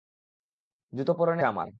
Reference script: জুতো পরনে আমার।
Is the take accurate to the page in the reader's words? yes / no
yes